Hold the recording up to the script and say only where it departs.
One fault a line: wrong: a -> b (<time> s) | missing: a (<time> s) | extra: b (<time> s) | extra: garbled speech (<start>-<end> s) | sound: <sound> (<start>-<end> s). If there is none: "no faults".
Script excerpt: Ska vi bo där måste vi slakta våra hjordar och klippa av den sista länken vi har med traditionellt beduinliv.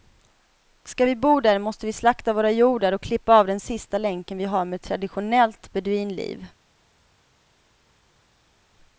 no faults